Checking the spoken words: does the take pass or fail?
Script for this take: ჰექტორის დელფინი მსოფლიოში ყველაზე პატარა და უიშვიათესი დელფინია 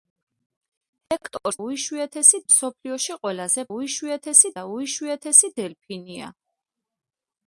fail